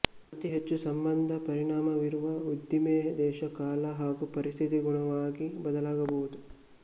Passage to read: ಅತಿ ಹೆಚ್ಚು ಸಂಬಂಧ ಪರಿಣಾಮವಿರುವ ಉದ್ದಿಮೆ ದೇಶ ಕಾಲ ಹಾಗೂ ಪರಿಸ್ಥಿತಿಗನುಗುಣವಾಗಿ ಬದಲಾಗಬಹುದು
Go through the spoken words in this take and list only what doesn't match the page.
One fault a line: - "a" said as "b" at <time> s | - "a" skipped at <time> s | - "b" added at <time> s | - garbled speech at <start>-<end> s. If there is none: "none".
none